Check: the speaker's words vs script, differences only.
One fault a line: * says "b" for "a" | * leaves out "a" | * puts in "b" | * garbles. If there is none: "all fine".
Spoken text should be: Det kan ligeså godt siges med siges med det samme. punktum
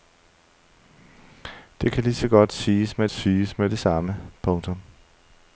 all fine